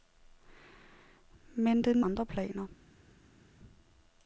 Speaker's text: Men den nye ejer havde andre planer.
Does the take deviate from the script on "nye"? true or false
true